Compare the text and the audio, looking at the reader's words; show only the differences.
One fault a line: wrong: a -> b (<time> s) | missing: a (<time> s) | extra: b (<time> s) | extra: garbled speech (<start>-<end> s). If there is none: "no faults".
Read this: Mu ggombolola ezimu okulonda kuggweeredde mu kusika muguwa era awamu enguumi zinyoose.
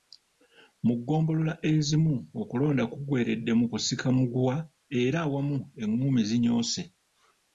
no faults